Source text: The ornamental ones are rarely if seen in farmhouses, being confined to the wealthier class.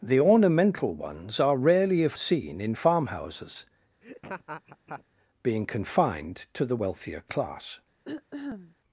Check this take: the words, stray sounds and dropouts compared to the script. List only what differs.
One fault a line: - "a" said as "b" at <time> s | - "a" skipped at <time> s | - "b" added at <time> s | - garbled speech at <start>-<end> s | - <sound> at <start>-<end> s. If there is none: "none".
- laugh at 4.0-5.0 s
- throat clearing at 8.0-8.8 s